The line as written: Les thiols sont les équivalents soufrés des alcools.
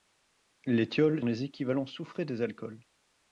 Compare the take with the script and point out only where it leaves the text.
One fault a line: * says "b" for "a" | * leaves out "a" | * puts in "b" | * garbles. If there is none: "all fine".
* leaves out "sont"